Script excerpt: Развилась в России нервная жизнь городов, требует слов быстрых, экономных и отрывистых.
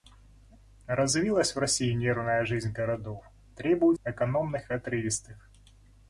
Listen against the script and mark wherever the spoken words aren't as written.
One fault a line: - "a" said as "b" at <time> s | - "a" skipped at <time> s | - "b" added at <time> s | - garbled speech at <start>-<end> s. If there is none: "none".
- "слов быстрых" skipped at 4.0 s